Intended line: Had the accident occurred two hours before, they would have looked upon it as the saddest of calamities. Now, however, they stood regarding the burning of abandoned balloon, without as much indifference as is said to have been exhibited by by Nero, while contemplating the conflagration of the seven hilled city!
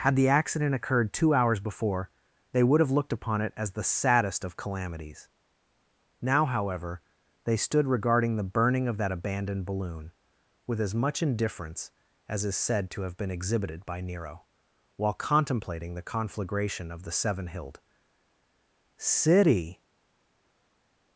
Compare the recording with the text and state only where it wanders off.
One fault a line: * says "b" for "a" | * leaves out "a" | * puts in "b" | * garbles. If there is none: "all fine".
* puts in "that"
* says "with" for "without"
* leaves out "by"